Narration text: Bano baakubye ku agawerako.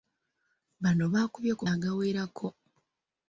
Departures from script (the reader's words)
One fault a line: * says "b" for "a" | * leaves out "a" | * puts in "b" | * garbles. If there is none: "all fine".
all fine